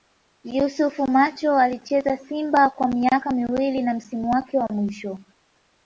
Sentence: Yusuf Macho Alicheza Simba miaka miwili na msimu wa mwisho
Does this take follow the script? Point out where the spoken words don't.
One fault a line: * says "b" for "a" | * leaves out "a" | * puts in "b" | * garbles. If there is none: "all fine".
* puts in "kwa"
* puts in "wake"